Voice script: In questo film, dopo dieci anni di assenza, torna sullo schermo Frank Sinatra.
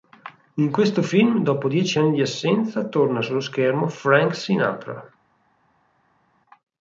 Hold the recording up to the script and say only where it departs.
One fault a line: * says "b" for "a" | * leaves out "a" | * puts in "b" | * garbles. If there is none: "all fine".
all fine